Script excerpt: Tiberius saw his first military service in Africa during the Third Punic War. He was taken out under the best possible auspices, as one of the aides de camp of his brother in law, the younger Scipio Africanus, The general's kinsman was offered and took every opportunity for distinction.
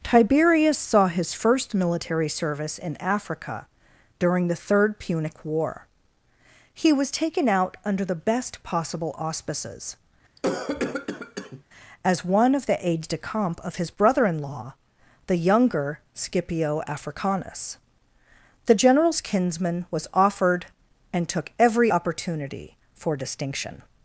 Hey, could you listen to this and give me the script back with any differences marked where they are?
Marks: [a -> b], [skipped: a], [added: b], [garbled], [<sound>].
Tiberius saw his first military service in Africa during the Third Punic War. He was taken out under the best possible auspices, [cough] as one of the aides de camp of his brother in law, the younger Scipio Africanus, The general's kinsman was offered and took every opportunity for distinction.